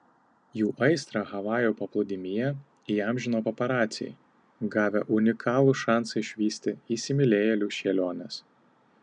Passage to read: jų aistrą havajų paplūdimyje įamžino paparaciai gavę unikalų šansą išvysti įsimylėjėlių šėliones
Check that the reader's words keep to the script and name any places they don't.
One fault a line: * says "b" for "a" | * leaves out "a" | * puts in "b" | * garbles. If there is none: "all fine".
all fine